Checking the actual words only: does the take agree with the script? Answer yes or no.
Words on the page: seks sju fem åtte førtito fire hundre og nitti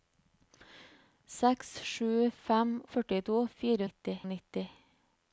no